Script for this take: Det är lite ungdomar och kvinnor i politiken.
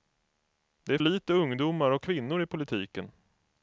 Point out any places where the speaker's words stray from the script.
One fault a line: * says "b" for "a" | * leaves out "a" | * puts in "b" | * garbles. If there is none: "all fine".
all fine